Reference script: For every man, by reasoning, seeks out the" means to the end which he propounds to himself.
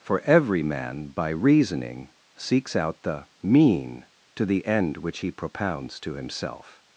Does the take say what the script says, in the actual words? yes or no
no